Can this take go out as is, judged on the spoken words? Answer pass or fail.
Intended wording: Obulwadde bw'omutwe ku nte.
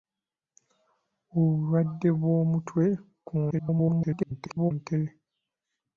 fail